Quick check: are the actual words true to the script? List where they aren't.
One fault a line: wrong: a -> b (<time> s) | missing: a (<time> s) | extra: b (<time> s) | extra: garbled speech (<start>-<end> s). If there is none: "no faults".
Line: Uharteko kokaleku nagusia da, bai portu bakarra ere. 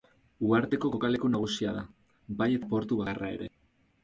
extra: eta (2.6 s)